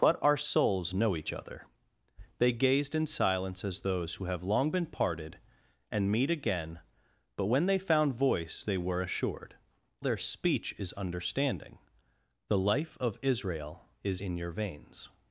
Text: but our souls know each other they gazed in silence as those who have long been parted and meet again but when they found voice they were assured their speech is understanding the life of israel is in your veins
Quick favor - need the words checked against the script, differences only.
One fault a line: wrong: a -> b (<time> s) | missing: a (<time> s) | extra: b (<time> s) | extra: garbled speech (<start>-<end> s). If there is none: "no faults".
no faults